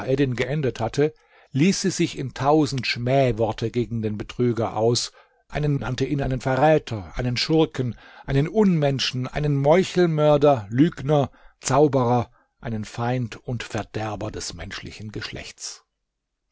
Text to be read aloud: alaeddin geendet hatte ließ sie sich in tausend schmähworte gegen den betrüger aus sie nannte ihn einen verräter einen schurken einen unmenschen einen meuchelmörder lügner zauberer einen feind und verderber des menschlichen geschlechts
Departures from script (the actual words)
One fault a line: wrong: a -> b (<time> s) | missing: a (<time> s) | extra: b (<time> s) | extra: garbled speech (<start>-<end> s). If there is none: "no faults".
wrong: sie -> einen (5.5 s)